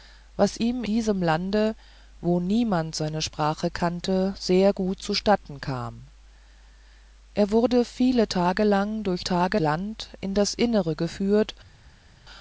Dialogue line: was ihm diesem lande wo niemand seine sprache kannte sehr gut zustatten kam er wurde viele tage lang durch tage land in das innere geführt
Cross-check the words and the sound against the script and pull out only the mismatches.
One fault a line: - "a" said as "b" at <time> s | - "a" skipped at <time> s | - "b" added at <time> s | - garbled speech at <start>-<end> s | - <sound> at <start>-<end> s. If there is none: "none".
none